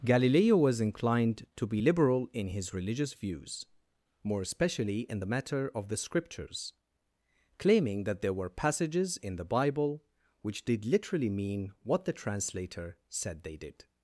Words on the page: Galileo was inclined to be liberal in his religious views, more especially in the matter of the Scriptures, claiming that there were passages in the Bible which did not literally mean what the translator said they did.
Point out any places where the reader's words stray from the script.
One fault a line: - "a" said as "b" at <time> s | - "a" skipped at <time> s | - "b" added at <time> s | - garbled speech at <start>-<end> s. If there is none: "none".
- "not" skipped at 10.8 s